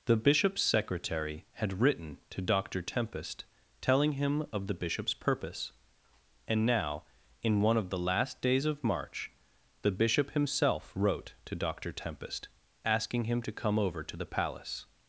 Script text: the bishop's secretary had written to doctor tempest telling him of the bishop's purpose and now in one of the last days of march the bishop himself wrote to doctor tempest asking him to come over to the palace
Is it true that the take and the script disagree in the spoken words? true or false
false